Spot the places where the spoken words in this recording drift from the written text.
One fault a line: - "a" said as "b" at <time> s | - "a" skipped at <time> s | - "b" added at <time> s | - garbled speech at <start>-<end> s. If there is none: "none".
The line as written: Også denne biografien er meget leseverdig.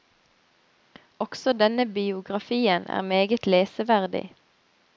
none